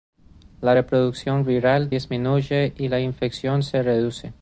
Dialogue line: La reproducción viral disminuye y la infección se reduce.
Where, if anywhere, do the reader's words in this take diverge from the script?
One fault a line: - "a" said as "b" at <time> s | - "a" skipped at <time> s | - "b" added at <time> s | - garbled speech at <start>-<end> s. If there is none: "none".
none